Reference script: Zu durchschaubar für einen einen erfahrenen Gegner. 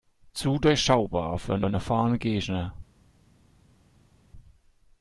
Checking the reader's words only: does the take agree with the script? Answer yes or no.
yes